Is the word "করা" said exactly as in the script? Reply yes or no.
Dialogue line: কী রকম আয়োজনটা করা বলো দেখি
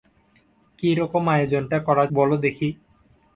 yes